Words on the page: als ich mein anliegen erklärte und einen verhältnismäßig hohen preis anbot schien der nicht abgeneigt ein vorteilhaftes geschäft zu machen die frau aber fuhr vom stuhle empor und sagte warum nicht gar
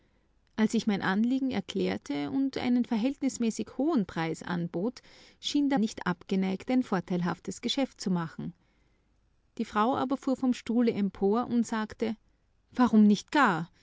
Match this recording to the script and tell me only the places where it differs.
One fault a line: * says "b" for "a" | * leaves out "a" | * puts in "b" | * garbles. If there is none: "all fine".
all fine